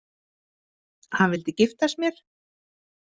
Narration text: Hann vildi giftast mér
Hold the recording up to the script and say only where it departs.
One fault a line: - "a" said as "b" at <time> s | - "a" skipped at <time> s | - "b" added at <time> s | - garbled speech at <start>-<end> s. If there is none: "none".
none